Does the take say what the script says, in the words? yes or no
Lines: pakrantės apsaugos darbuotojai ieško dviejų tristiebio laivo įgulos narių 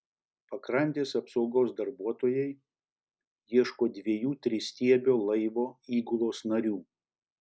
yes